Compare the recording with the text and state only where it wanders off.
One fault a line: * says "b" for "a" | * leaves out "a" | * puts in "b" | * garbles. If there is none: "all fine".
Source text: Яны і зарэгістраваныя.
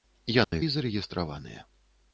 all fine